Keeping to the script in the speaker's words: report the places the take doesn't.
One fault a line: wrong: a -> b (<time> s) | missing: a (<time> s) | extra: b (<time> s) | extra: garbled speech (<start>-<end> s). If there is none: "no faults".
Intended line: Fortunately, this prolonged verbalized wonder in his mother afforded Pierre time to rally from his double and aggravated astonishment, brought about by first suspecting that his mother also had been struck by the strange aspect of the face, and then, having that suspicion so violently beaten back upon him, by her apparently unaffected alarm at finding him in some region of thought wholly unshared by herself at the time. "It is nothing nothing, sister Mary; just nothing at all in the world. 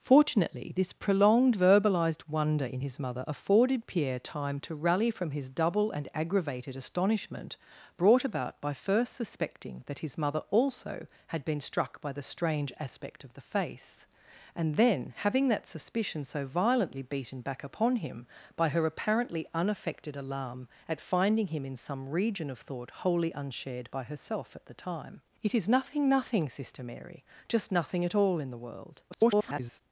extra: garbled speech (29.1-29.8 s)